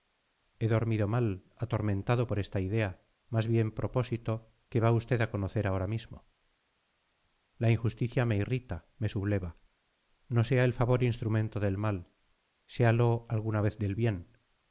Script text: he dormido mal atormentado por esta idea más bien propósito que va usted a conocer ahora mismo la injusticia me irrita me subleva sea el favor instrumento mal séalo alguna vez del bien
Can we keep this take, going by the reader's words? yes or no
no